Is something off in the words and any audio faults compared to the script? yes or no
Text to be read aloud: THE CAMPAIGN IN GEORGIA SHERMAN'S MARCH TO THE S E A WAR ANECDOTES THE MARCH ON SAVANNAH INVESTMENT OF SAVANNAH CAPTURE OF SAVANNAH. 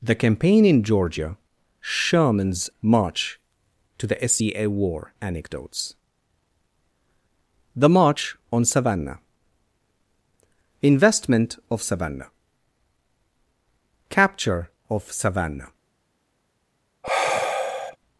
yes